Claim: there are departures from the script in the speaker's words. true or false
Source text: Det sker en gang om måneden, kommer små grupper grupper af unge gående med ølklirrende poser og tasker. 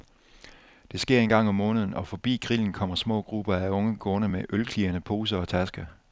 true